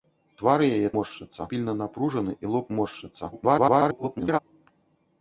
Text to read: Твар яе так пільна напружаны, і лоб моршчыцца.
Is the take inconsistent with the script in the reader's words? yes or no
yes